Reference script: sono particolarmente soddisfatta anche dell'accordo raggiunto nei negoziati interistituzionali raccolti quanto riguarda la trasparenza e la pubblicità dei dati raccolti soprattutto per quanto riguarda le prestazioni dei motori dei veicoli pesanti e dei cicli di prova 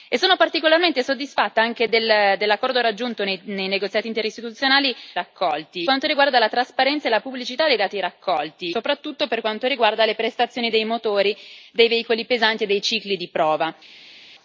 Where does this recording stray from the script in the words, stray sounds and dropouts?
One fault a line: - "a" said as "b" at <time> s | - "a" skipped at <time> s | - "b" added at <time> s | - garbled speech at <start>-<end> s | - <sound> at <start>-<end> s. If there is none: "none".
none